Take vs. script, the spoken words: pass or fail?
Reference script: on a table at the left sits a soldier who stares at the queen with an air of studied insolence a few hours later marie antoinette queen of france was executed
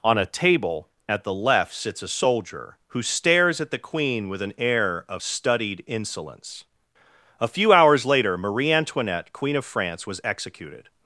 pass